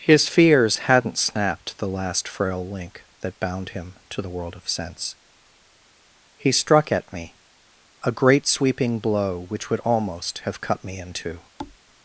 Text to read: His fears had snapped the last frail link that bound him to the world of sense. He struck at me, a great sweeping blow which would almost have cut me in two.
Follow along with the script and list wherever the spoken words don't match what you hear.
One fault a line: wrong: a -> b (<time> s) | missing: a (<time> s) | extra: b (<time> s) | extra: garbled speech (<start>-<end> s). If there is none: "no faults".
wrong: had -> hadn't (0.9 s)